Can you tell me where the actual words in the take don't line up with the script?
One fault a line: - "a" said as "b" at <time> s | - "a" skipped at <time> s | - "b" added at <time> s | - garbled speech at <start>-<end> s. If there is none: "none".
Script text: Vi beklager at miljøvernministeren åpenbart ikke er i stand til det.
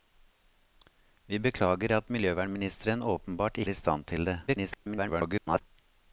- "ikke" skipped at 3.6 s
- garbled speech at 4.5-5.6 s